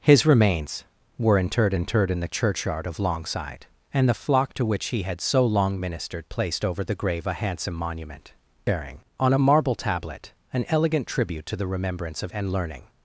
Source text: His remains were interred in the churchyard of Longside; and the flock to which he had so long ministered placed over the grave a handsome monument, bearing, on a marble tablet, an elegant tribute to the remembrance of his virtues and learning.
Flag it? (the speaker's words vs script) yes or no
yes